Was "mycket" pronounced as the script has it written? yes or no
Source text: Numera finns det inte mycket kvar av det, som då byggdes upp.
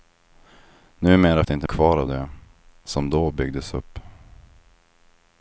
no